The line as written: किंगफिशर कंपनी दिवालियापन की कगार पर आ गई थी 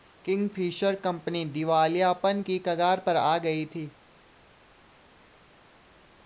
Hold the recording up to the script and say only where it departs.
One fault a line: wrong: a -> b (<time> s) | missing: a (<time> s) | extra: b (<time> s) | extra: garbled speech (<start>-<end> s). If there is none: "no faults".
no faults